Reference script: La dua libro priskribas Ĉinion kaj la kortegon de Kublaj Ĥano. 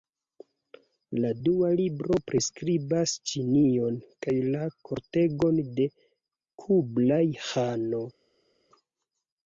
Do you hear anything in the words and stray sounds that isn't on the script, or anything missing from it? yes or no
no